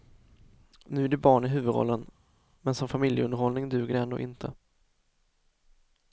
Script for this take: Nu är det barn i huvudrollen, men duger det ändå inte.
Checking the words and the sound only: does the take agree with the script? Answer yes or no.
no